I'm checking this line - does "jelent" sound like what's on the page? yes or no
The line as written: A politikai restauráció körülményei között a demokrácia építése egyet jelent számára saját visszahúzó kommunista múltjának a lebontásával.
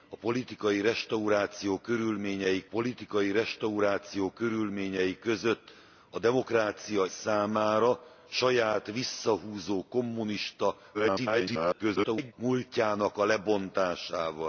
no